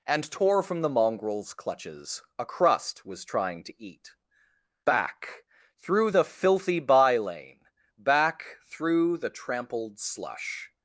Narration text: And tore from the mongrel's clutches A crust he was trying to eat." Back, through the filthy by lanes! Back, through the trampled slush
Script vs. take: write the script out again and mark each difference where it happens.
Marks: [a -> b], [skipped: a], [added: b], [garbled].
And tore from the mongrel's clutches A crust [skipped: he] was trying to eat." Back, through the filthy by [lanes! -> lane] Back, through the trampled slush